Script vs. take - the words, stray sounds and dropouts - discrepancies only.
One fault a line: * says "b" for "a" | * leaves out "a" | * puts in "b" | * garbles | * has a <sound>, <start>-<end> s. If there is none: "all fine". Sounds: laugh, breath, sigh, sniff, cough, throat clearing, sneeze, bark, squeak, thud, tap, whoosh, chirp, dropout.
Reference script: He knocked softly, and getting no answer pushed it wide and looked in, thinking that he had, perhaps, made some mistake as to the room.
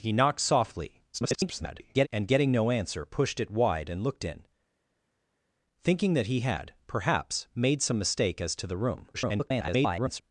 * garbles
* garbles